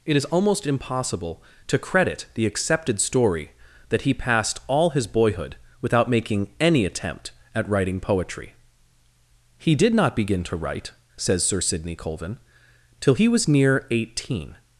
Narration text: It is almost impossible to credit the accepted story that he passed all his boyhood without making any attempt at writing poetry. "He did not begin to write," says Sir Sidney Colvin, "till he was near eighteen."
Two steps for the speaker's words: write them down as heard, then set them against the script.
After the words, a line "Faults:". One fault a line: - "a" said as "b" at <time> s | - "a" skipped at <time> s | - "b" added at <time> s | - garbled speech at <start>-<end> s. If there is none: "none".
It is almost impossible to credit the accepted story that he passed all his boyhood without making any attempt at writing poetry. "He did not begin to write," says Sir Sidney Colvin, "till he was near eighteen."
Faults:
none